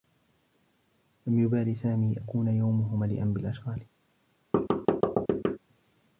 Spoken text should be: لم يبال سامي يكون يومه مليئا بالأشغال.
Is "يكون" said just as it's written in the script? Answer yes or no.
yes